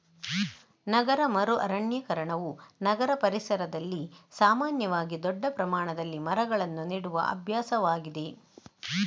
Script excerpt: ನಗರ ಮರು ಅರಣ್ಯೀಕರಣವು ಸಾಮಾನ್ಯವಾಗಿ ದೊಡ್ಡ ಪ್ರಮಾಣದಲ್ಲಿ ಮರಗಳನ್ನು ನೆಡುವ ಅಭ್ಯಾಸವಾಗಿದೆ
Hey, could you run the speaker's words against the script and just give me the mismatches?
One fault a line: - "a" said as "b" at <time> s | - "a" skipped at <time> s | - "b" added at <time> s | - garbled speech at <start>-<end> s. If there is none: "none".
- "ನಗರ ಪರಿಸರದಲ್ಲಿ" added at 2.8 s